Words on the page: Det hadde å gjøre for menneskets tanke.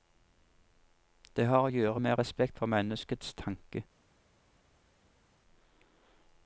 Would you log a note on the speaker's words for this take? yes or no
yes